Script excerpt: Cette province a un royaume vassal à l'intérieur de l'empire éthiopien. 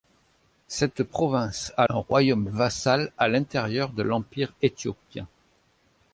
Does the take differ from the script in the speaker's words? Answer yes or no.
no